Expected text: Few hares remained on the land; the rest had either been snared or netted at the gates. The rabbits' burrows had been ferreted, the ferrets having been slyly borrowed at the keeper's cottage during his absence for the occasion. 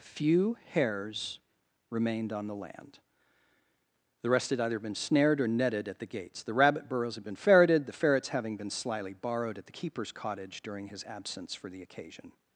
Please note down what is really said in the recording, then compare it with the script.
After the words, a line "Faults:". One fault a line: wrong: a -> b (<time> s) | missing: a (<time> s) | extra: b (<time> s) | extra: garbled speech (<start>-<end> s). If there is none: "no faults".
Few hares remained on the land; the rest had either been snared or netted at the gates. The rabbit' burrows had been ferreted, the ferrets having been slyly borrowed at the keeper's cottage during his absence for the occasion.
Faults:
wrong: rabbits -> rabbit (6.5 s)